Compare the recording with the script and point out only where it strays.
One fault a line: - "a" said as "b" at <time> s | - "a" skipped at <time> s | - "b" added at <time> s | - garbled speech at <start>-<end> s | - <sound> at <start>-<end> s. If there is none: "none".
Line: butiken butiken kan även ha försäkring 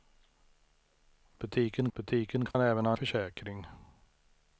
- dropout at 2.5-2.5 s